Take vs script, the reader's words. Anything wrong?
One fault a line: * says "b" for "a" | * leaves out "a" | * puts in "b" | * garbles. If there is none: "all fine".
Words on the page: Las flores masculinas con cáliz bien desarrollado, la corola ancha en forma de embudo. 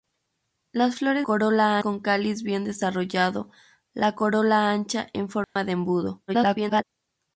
* says "corola" for "masculinas"
* garbles